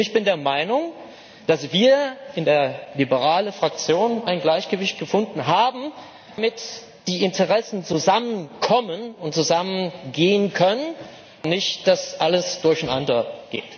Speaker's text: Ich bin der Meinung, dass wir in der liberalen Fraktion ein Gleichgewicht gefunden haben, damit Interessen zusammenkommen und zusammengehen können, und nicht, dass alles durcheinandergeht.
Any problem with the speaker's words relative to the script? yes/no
yes